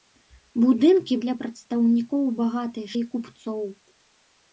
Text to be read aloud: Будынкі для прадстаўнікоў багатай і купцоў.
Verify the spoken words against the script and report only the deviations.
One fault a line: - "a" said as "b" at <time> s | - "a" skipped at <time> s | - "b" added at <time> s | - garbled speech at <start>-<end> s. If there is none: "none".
none